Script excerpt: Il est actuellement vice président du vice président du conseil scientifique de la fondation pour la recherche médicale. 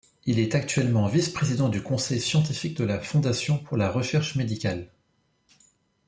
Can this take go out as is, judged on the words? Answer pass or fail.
fail